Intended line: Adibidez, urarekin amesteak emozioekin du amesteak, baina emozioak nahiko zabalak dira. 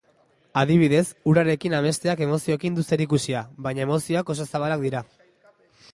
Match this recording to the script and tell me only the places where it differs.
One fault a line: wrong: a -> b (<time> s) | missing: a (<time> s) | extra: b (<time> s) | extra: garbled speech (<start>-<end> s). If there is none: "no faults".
wrong: amesteak -> zerikusia (3.0 s)
wrong: nahiko -> oso (4.3 s)